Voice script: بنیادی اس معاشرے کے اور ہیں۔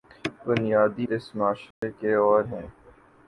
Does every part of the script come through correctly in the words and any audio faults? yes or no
no